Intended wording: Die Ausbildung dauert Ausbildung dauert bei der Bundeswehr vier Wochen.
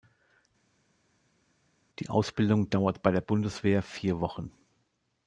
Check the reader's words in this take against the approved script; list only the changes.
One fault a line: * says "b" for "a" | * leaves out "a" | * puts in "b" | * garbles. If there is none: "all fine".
* leaves out "Ausbildung dauert"